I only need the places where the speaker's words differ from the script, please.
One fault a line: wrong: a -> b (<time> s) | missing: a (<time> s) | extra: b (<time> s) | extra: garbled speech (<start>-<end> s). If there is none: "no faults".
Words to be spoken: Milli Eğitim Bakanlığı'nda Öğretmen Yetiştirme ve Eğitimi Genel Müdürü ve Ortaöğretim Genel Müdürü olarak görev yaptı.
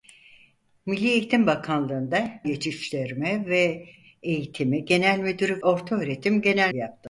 missing: Öğretmen (2.3 s)
missing: ve (5.6 s)
missing: Müdürü olarak görev (6.7 s)